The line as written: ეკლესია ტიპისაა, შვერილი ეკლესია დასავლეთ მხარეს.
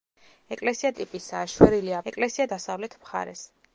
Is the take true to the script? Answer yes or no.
yes